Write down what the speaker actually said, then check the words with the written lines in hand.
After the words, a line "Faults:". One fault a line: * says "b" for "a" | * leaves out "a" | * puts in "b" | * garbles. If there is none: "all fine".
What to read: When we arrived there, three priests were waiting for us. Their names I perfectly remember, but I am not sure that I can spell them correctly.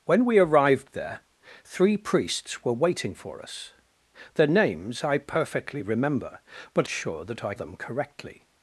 When we arrived there, three priests were waiting for us. Their names I perfectly remember, but sure that I them correctly.
Faults:
* leaves out "I am not"
* leaves out "can spell"